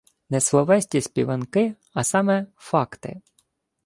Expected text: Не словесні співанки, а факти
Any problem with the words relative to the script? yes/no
yes